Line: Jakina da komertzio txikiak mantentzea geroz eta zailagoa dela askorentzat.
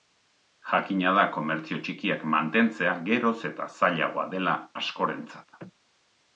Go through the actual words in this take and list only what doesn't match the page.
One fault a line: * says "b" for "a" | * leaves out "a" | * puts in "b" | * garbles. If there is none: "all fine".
all fine